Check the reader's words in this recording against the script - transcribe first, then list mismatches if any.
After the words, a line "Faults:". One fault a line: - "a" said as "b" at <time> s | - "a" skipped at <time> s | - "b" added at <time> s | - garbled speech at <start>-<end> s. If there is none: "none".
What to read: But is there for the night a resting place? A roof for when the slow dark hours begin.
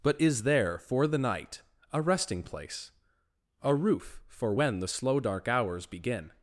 But is there for the night a resting place? A roof for when the slow dark hours begin.
Faults:
none